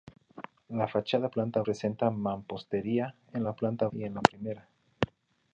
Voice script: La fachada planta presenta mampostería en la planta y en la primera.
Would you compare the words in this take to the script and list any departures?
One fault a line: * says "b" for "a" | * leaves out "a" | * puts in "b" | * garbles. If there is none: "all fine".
all fine